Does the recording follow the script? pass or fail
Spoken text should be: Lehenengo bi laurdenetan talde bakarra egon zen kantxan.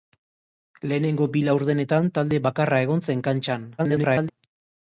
fail